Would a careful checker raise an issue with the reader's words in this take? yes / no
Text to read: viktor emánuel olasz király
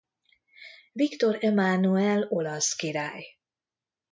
no